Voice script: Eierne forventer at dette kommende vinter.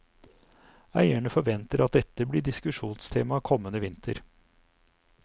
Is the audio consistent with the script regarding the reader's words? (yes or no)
no